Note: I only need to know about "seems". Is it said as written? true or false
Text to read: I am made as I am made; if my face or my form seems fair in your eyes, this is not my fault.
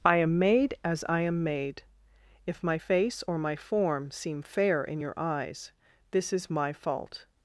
false